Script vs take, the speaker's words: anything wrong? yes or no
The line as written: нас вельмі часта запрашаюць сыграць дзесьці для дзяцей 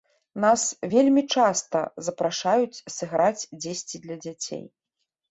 no